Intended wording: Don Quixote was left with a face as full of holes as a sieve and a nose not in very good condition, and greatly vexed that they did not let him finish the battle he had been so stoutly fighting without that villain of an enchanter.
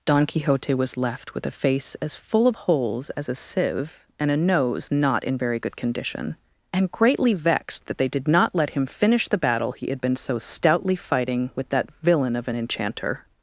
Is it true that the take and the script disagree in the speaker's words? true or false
true